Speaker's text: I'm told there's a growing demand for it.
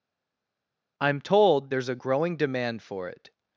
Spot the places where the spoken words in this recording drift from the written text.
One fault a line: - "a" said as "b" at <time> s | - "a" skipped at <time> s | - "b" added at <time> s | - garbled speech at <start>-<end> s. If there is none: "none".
none